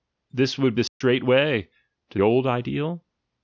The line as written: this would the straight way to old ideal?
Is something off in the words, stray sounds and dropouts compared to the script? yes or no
yes